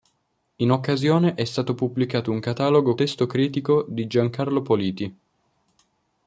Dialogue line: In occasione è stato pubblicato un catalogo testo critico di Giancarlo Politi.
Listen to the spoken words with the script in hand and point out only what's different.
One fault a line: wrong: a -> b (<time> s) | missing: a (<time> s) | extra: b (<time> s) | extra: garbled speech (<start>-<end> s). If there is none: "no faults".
no faults